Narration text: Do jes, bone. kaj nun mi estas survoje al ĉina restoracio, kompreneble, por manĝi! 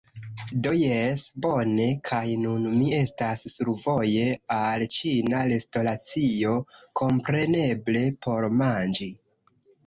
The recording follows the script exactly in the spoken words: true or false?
true